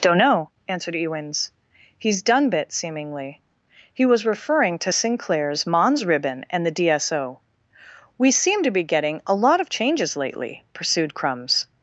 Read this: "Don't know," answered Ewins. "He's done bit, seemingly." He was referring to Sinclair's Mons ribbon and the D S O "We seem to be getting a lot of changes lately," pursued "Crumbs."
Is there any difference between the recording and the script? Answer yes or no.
no